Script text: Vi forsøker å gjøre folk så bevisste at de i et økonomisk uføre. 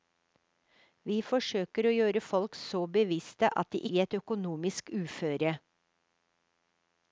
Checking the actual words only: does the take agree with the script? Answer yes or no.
yes